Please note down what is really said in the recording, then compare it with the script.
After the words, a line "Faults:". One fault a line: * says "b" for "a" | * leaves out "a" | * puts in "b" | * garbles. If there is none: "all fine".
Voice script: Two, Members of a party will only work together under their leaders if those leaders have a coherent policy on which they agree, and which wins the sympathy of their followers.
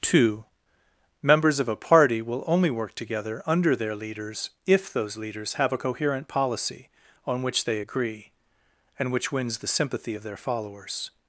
Two, Members of a party will only work together under their leaders if those leaders have a coherent policy on which they agree, and which wins the sympathy of their followers.
Faults:
all fine